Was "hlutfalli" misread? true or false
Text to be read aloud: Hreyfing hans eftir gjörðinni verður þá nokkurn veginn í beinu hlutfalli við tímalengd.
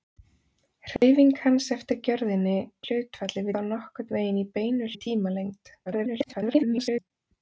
true